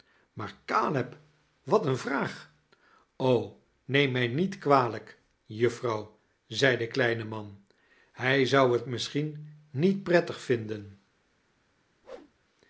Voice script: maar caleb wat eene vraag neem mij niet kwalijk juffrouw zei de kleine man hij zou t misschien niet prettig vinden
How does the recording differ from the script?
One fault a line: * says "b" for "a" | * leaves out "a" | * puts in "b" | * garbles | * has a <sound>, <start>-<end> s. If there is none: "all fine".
* has a whoosh, 12.0-12.3 s